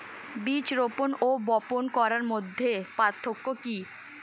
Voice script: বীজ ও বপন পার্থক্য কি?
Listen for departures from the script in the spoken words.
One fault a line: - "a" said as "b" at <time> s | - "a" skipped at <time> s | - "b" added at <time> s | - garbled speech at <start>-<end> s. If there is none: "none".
- "রোপন" added at 0.7 s
- "করার মধ্যে" added at 2.0 s